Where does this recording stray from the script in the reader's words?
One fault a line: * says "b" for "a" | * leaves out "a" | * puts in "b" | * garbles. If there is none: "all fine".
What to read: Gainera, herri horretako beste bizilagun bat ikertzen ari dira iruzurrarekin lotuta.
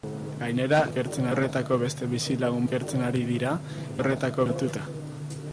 * says "ikertzen" for "herri"
* leaves out "bat"
* says "horretako" for "iruzurrarekin"